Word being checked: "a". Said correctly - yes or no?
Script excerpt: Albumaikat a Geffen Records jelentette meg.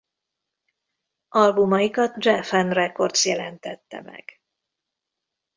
no